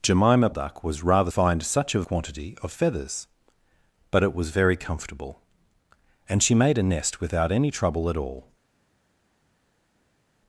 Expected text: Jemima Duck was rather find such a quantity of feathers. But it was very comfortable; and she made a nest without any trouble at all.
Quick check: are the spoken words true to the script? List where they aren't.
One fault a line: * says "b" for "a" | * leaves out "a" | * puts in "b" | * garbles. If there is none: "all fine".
all fine